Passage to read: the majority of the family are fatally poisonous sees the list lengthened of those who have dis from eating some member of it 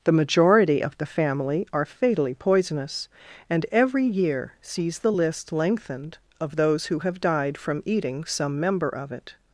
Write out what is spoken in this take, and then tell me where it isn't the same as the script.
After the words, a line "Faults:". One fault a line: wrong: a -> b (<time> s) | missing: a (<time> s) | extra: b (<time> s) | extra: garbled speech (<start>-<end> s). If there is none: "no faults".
the majority of the family are fatally poisonous and every year sees the list lengthened of those who have died from eating some member of it
Faults:
extra: and every year (3.5 s)
wrong: dis -> died (7.2 s)